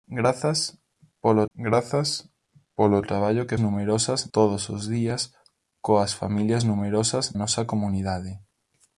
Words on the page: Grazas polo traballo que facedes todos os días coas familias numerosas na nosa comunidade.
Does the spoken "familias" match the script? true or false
true